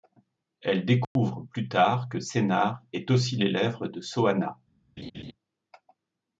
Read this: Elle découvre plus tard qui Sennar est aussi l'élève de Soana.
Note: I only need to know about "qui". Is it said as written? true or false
false